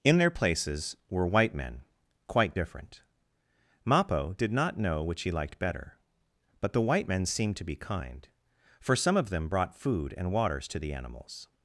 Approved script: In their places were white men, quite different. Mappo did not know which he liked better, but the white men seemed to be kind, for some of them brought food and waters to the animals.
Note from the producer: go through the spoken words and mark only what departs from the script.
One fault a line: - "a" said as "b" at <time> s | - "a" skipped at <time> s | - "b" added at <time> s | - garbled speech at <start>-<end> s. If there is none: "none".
none